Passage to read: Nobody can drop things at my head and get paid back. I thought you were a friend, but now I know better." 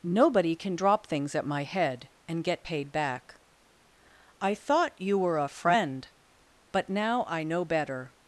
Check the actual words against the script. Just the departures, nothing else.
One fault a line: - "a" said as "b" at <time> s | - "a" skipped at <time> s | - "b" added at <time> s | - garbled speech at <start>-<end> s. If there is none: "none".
none